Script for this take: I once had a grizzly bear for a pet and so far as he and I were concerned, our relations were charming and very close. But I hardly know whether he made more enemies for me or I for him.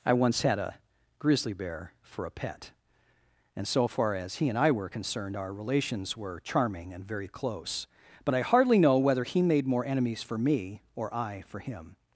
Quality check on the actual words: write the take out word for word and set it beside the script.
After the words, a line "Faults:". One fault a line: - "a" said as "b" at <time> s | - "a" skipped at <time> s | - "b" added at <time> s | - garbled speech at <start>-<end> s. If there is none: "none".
I once had a grizzly bear for a pet and so far as he and I were concerned, our relations were charming and very close. But I hardly know whether he made more enemies for me or I for him.
Faults:
none